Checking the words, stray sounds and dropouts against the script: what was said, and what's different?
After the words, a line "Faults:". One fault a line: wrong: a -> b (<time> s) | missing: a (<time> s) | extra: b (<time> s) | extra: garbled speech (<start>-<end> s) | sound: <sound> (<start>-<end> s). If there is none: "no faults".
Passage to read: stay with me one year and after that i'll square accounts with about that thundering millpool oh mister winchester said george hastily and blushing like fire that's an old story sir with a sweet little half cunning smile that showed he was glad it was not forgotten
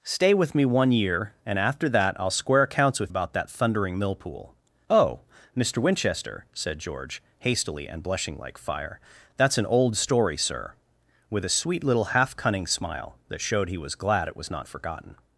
stay with me one year and after that i'll square accounts with about that thundering millpool oh mister winchester said george hastily and blushing like fire that's an old story sir with a sweet little half cunning smile that showed he was glad it was not forgotten
Faults:
no faults